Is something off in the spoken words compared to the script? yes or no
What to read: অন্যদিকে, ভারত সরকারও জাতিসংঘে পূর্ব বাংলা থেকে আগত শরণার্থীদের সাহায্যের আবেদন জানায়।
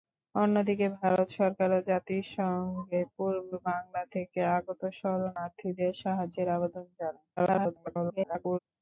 yes